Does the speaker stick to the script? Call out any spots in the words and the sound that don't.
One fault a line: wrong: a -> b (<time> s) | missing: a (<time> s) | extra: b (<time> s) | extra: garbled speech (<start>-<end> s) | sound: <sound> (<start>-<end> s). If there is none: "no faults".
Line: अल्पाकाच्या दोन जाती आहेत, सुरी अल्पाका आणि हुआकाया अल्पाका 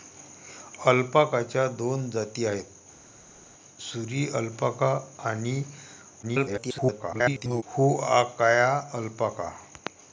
extra: garbled speech (6.2-7.6 s)